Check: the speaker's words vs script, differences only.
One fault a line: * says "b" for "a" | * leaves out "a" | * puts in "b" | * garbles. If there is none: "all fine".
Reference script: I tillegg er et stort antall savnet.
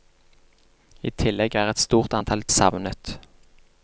all fine